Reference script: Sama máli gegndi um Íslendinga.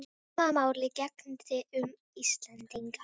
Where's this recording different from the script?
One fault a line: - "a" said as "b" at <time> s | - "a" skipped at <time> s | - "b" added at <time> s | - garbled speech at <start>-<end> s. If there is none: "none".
none